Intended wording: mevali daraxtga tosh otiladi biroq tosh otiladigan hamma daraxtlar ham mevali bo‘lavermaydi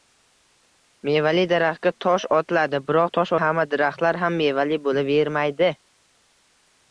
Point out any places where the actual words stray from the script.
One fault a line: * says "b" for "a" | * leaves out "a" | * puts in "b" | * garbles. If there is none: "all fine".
* leaves out "otiladigan"